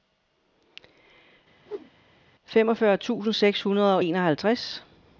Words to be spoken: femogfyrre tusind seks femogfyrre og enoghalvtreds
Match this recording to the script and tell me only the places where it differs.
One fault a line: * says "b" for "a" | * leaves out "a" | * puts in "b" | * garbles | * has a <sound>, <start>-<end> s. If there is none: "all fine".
* has a whoosh, 1.7-1.9 s
* says "hundrede" for "femogfyrre"